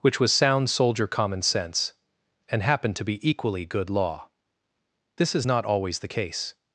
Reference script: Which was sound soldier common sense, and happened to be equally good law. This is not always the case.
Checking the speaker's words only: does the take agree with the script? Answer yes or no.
yes